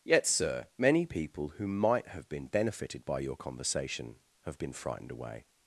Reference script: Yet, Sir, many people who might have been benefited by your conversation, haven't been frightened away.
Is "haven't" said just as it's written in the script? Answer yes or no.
no